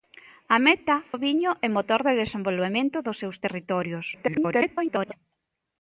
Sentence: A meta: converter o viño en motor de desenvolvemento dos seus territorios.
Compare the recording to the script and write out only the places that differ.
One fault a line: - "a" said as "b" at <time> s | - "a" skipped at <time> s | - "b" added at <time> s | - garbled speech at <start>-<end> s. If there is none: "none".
- "converter" skipped at 0.9 s
- garbled speech at 4.1-5.1 s